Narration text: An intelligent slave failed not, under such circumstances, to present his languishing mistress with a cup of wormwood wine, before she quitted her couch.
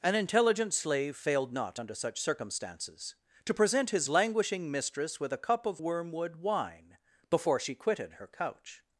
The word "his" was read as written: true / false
true